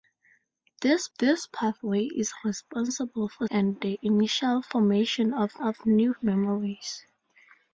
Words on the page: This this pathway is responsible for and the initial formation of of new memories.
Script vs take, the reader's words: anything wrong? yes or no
no